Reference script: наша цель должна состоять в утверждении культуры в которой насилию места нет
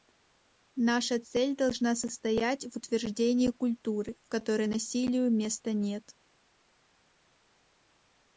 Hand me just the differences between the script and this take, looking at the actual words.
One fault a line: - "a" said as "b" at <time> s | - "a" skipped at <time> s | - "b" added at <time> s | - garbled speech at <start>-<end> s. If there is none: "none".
none